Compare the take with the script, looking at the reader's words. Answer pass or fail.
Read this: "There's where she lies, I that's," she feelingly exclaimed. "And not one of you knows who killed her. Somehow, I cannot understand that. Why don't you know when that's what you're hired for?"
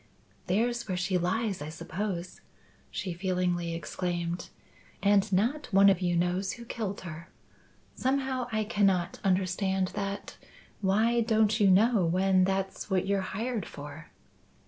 fail